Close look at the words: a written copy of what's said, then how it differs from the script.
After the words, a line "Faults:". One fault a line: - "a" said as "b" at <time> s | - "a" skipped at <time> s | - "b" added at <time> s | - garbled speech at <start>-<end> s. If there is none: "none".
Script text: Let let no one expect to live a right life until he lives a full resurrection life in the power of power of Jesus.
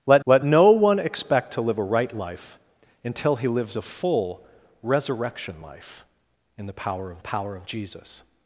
Let let no one expect to live a right life until he lives a full resurrection life in the power of power of Jesus.
Faults:
none